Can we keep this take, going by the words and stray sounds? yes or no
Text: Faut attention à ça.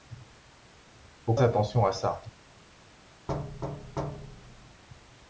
no